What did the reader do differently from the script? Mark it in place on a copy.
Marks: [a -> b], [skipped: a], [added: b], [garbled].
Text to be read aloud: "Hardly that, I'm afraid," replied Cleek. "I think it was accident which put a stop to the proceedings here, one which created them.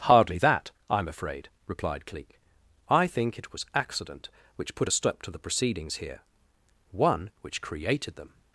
"Hardly that, I'm afraid," replied Cleek. "I think it was accident which put a stop to the proceedings here, one which created them.